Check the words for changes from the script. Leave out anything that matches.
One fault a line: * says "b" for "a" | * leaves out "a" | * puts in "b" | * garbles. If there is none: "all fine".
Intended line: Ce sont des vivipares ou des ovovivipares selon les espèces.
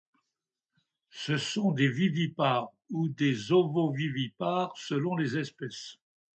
all fine